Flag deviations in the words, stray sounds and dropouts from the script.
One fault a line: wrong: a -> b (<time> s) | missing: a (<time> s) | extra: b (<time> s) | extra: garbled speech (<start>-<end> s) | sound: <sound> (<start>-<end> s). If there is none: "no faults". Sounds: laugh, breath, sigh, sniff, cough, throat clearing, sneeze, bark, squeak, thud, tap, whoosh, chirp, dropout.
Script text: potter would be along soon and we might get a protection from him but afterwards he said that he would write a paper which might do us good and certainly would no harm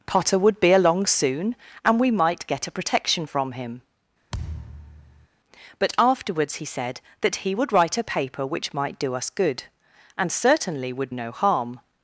sound: thud (4.3-5.3 s)